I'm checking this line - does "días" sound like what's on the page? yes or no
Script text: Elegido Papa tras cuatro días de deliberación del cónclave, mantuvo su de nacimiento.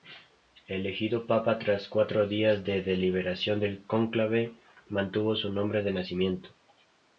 yes